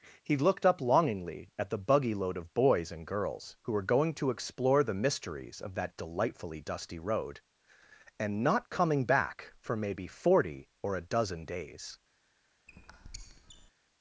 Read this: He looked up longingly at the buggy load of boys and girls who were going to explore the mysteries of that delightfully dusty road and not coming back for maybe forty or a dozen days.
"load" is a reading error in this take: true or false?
false